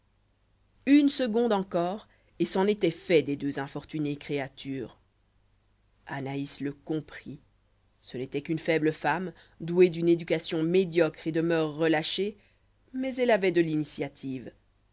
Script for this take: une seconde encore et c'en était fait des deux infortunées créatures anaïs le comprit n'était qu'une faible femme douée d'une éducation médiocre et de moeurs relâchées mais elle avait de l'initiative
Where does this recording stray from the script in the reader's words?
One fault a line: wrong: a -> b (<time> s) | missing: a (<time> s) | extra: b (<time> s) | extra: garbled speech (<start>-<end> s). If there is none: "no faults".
extra: ce (8.0 s)